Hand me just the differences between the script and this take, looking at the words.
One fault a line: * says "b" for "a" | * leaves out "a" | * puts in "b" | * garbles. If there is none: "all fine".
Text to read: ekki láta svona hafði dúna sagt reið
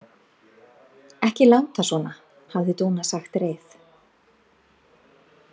all fine